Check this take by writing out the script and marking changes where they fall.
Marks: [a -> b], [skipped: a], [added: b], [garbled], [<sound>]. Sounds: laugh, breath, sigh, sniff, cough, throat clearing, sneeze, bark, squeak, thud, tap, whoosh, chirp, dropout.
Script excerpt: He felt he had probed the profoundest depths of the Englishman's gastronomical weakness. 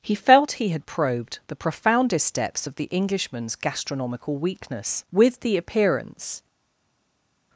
He felt he had probed the profoundest depths of the Englishman's gastronomical weakness. [added: With the appearance]